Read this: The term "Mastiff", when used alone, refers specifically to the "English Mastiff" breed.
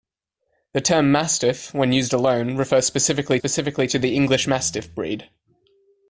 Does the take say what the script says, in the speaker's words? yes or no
no